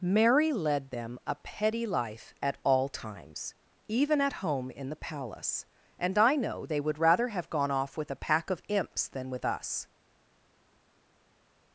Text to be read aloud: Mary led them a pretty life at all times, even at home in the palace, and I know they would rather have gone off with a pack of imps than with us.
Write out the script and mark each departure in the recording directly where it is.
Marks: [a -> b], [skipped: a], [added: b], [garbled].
Mary led them a [pretty -> petty] life at all times, even at home in the palace, and I know they would rather have gone off with a pack of imps than with us.